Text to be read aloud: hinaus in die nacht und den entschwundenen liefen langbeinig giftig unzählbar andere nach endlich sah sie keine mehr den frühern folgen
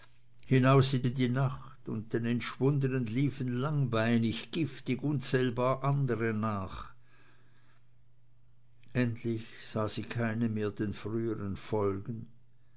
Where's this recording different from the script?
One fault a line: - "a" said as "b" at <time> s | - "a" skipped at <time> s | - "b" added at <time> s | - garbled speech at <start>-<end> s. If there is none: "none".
- "in" added at 1.1 s